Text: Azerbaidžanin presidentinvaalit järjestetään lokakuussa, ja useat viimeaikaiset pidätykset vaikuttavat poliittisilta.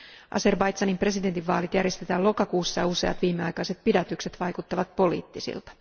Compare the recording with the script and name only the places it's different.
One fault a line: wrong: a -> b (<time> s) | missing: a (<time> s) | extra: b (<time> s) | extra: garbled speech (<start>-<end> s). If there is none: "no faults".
no faults